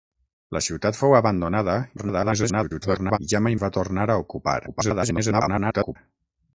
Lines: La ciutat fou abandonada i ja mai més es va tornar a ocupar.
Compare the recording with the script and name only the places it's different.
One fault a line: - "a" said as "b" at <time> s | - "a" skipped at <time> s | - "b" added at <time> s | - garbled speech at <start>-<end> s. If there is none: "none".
- garbled speech at 2.0-3.2 s
- "més" skipped at 3.6 s
- garbled speech at 4.7-6.0 s